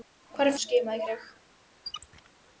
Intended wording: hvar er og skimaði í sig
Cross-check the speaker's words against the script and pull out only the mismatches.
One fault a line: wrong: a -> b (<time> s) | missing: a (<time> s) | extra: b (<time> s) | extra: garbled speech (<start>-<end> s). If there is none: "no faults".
no faults